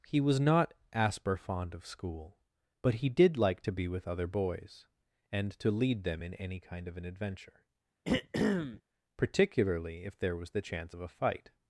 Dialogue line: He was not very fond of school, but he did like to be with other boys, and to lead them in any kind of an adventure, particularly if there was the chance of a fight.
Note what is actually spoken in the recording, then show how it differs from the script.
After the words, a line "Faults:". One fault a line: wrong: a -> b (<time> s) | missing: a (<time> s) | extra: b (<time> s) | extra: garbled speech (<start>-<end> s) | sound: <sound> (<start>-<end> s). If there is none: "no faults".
He was not asper fond of school, but he did like to be with other boys, and to lead them in any kind of an adventure, particularly if there was the chance of a fight.
Faults:
wrong: very -> asper (0.9 s)
sound: throat clearing (8.0-8.8 s)